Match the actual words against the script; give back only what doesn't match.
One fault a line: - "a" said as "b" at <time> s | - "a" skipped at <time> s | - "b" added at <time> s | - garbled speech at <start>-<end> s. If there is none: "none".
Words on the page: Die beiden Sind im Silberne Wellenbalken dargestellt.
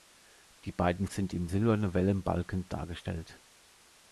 none